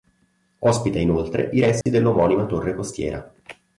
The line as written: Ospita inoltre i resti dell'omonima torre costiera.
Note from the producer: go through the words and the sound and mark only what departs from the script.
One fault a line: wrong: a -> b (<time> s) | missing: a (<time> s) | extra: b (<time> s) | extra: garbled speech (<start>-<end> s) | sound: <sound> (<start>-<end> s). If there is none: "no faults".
sound: dropout (1.8-1.9 s)